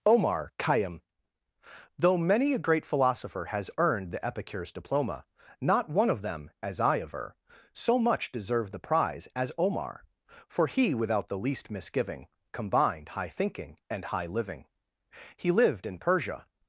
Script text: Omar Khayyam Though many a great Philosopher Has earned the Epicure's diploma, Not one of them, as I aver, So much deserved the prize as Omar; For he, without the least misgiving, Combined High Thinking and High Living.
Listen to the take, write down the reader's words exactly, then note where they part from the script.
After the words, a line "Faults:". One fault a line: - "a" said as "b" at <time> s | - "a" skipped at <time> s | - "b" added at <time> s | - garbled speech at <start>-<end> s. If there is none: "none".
Omar Khayyam Though many a great Philosopher Has earned the Epicure's diploma, Not one of them, as I aver, So much deserved the prize as Omar; For he, without the least misgiving, Combined High Thinking and High Living. He lived in Persia
Faults:
- "He lived in Persia" added at 15.4 s